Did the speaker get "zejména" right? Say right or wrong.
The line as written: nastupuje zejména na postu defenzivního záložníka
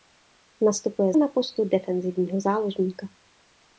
wrong